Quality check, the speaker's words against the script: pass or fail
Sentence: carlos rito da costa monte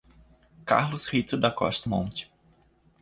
pass